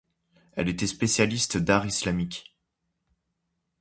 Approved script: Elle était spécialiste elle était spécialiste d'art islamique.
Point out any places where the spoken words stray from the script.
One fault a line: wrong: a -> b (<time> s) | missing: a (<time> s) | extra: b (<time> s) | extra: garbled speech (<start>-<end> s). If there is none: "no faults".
missing: elle était spécialiste (1.6 s)